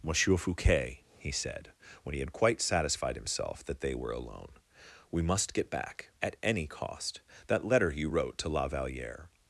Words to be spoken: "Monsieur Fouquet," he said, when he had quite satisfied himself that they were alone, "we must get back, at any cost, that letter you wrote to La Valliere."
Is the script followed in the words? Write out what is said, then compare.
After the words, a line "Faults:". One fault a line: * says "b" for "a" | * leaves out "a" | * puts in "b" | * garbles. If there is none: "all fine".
"Monsieur Fouquet," he said, when he had quite satisfied himself that they were alone, "we must get back, at any cost, that letter you wrote to La Valliere."
Faults:
all fine